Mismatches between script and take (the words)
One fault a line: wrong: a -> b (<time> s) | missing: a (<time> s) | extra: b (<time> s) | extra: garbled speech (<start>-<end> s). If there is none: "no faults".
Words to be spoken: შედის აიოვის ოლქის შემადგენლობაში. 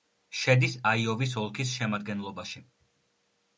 no faults